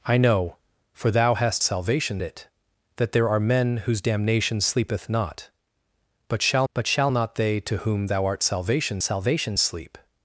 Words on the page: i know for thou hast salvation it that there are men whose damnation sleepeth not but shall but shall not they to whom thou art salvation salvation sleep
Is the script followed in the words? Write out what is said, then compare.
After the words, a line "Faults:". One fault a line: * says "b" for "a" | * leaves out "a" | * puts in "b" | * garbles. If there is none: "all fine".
i know for thou hast salvation it that there are men whose damnation sleepeth not but shall but shall not they to whom thou art salvation salvation sleep
Faults:
all fine